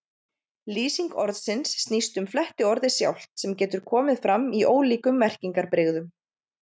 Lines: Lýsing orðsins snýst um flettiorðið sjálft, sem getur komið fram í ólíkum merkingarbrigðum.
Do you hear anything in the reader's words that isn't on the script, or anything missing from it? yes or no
no